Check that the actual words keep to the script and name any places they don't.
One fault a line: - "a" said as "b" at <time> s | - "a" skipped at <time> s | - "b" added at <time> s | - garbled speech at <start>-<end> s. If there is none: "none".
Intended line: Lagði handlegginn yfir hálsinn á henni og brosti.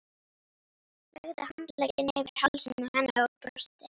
none